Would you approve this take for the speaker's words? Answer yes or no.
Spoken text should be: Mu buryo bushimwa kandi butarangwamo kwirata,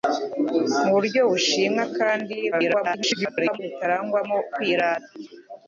no